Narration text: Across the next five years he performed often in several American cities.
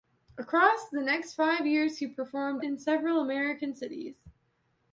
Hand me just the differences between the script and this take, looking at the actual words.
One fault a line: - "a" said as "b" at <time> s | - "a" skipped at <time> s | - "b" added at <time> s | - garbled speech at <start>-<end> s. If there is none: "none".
- "often" skipped at 2.6 s